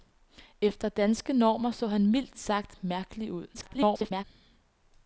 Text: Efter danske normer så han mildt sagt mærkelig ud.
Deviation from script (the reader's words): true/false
true